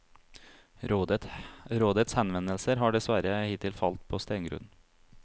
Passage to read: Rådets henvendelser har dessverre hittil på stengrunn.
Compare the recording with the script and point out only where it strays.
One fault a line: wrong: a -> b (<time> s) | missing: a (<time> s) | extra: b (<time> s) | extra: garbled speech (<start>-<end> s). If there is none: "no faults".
extra: falt (3.8 s)